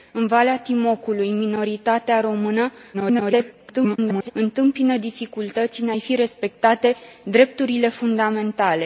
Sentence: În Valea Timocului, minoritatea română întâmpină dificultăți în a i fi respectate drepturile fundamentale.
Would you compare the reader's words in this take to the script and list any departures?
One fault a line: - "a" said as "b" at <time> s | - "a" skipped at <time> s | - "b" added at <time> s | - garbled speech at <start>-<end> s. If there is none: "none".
- garbled speech at 2.9-4.3 s